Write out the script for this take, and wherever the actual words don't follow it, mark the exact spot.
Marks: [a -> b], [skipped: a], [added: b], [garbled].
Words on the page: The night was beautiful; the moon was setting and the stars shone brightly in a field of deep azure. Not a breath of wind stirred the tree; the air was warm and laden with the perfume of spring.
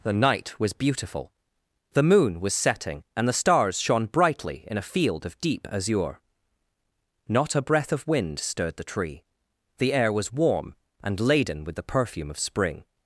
The night was beautiful; the moon was setting and the stars shone brightly in a field of deep azure. Not a breath of wind stirred the tree; the air was warm and laden with the perfume of spring.